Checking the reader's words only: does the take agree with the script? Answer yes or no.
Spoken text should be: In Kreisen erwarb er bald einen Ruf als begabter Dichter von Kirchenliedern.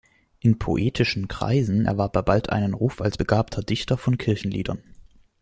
no